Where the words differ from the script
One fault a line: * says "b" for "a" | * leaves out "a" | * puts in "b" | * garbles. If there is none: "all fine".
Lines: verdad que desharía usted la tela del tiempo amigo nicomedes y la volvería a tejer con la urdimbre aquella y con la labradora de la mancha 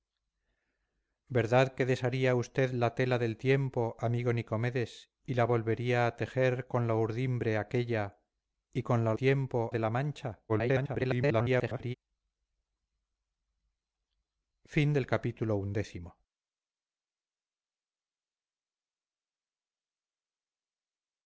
* says "tiempo" for "labradora"
* garbles